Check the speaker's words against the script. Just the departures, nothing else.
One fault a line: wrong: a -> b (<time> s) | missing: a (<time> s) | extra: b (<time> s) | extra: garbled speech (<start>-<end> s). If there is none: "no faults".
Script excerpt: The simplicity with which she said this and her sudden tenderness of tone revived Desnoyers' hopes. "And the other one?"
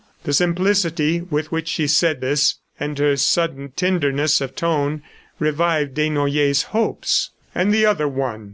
no faults